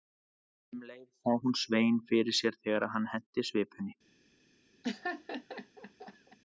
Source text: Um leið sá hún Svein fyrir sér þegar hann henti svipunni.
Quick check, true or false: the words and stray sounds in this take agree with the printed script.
false